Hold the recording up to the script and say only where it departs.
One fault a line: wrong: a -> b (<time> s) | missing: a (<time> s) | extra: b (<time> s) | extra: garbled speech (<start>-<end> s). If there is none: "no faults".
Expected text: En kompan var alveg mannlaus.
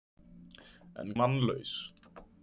missing: kompan var alveg (1.1 s)